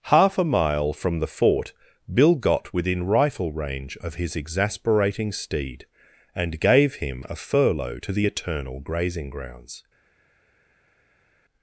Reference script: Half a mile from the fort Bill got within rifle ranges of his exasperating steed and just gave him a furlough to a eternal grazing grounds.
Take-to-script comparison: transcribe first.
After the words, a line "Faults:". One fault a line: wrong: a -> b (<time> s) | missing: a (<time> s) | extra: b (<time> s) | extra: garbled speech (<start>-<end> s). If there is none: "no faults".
Half a mile from the fort Bill got within rifle range of his exasperating steed and gave him a furlough to the eternal grazing grounds.
Faults:
wrong: ranges -> range (3.5 s)
missing: just (6.6 s)
wrong: a -> the (8.1 s)